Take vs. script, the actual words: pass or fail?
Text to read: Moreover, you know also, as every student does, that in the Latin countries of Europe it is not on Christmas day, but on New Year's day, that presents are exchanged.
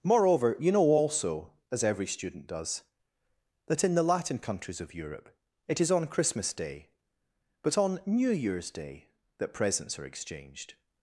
fail